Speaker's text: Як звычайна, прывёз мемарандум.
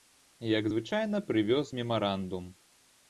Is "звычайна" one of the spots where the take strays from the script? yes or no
no